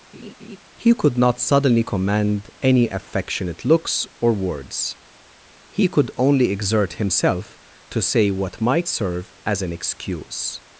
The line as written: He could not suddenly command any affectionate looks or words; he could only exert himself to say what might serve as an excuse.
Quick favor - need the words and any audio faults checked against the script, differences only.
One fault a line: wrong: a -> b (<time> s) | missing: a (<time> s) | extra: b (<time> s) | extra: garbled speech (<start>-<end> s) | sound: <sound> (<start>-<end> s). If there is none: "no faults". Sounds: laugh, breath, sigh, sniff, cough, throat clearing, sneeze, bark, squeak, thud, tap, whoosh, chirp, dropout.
sound: laugh (0.1-0.6 s)